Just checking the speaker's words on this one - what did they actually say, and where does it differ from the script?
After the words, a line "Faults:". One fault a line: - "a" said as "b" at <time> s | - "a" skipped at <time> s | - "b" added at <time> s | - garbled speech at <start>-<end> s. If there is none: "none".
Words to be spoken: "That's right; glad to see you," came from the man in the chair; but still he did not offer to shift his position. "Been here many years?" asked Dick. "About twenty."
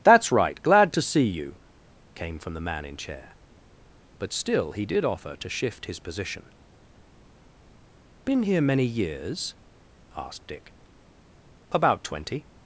"That's right; glad to see you," came from the man in chair; but still he did offer to shift his position. "Been here many years?" asked Dick. "About twenty."
Faults:
- "the" skipped at 3.0 s
- "not" skipped at 5.0 s